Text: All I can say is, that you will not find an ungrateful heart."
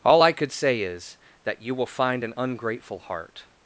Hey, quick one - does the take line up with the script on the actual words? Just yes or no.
no